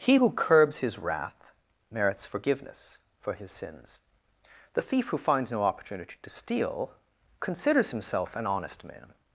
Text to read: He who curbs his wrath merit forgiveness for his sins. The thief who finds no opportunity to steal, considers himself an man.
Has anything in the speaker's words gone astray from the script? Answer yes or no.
yes